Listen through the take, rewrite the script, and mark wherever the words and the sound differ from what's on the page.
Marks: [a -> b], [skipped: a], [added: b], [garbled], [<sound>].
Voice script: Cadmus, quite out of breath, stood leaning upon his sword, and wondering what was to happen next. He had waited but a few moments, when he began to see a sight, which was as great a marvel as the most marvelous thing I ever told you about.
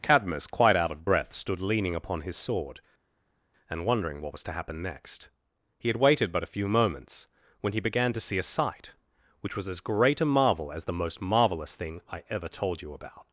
Cadmus, quite out of breath, stood leaning upon his sword, and wondering what was to happen next. He had waited but a few moments, when he began to see a sight, which was as great a marvel as the most marvelous thing I ever told you about.